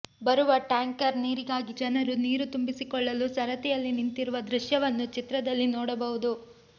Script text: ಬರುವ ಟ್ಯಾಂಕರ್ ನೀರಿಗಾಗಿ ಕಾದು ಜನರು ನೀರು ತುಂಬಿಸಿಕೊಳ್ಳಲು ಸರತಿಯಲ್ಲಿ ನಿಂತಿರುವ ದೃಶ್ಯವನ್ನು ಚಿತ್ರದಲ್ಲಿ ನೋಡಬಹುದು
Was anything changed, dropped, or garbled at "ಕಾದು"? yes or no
yes